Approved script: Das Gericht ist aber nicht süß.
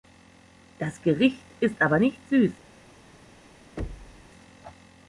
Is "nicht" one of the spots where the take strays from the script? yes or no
no